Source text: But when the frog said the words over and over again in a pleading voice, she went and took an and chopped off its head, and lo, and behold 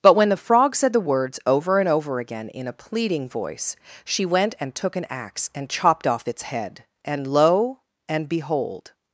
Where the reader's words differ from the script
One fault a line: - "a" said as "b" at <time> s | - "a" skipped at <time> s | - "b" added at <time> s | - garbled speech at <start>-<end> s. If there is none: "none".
- "axe" added at 5.1 s